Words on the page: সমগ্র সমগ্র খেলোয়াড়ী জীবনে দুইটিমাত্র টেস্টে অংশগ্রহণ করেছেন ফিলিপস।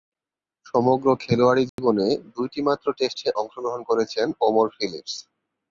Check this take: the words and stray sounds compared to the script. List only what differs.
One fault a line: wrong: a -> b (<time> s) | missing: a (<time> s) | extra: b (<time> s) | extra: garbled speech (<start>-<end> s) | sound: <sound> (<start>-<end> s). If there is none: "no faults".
missing: সমগ্র (1.1 s)
sound: dropout (1.7-1.8 s)
extra: ওমর (4.4 s)